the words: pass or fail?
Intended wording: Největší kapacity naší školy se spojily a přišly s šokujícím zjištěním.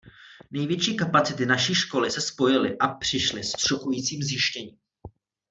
pass